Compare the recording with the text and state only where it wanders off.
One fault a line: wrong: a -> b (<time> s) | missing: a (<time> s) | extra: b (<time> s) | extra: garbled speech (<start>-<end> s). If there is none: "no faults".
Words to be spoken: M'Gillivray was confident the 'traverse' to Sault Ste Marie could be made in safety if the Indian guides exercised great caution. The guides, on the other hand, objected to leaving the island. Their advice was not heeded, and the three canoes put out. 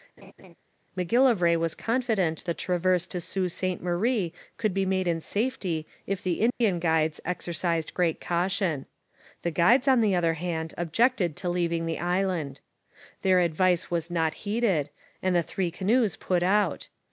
no faults